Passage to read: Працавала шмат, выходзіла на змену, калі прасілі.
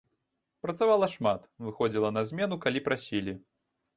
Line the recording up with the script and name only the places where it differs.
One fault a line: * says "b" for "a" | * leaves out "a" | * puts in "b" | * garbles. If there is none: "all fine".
all fine